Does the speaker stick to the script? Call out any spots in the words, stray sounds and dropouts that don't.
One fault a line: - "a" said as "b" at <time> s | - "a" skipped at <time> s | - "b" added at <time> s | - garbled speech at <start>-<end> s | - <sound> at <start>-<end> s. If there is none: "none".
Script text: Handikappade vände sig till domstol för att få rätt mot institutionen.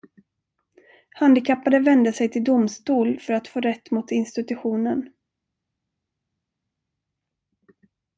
none